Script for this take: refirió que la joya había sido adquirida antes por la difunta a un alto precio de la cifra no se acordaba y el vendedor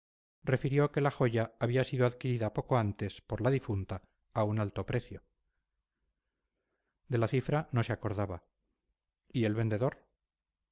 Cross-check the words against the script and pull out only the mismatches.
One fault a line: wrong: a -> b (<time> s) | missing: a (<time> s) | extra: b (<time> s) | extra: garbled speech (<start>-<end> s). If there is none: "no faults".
extra: poco (2.5 s)